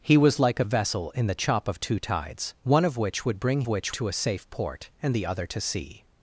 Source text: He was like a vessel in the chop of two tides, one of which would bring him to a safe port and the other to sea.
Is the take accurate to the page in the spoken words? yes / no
no